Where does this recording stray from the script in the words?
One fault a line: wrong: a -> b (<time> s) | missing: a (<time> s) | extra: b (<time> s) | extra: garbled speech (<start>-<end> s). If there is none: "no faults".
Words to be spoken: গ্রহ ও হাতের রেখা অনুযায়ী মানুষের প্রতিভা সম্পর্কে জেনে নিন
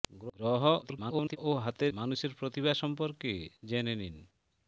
extra: garbled speech (0.8-1.4 s)
missing: রেখা অনুযায়ী (1.9 s)